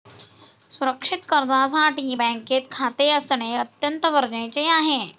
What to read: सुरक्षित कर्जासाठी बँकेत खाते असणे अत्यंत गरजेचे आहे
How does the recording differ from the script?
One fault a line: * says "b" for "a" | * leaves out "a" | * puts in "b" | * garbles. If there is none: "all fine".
all fine